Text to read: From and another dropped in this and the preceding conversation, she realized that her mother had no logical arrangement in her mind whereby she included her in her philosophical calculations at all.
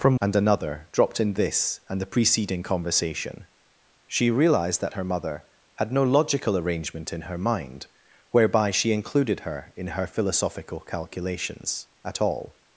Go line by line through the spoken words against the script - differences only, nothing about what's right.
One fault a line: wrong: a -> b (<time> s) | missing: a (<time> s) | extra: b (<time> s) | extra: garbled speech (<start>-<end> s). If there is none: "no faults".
no faults